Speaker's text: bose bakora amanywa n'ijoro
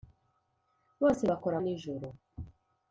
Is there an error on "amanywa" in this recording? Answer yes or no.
yes